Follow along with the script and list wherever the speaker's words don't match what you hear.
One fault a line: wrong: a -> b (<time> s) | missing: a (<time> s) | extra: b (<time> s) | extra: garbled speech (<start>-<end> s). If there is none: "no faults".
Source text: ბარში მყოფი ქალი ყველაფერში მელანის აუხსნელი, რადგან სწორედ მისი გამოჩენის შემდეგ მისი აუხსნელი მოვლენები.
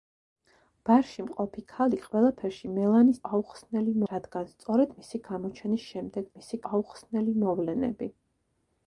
no faults